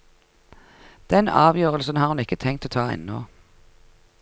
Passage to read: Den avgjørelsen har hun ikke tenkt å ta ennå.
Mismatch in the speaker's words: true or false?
false